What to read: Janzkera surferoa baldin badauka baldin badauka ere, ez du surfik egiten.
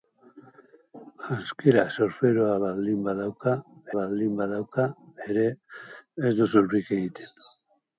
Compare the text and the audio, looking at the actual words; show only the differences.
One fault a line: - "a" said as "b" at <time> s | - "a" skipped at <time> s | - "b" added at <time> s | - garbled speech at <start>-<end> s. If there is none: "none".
none